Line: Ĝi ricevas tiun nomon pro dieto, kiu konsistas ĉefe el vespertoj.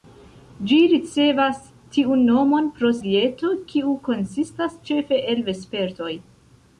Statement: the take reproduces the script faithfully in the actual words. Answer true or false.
true